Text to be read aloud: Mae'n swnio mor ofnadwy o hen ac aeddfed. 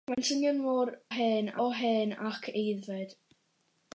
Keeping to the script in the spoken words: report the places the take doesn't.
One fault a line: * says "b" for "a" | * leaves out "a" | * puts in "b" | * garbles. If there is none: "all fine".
* says "hen" for "ofnadwy"